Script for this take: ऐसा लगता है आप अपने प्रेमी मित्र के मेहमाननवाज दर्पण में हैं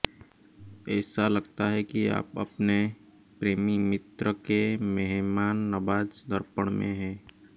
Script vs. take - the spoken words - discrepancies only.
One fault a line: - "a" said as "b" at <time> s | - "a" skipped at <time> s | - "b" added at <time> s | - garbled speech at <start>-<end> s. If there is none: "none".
- "कि" added at 1.8 s